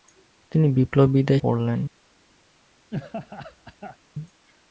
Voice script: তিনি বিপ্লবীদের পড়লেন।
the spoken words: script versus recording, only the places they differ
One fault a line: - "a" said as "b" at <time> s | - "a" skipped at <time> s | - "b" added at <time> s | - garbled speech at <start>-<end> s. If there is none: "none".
none